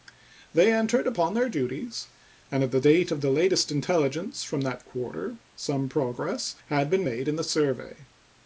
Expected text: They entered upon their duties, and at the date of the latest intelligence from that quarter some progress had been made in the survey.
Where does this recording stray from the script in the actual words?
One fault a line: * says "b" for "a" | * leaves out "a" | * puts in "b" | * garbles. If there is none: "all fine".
all fine